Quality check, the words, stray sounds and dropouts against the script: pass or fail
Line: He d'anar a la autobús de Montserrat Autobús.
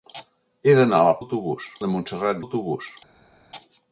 pass